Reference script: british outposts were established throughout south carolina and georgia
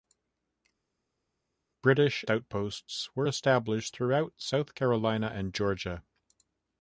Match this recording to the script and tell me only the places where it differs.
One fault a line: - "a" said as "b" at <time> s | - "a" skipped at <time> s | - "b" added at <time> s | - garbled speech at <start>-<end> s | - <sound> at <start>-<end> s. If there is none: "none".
none